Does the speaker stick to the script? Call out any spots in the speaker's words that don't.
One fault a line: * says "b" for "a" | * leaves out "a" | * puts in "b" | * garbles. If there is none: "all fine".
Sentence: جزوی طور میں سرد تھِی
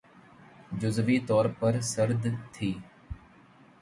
* says "پر" for "میں"